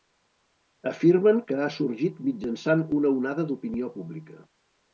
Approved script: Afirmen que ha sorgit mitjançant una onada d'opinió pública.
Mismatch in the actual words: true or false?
false